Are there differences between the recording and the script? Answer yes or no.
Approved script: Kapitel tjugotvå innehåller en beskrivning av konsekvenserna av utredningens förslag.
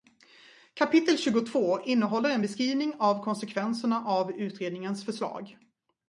no